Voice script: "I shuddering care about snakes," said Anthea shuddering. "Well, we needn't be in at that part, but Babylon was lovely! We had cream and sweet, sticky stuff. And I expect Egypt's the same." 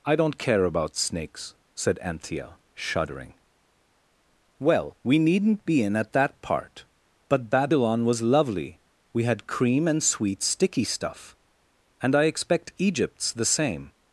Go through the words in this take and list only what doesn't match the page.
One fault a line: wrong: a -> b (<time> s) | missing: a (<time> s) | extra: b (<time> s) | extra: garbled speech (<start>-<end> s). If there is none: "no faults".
wrong: shuddering -> don't (0.1 s)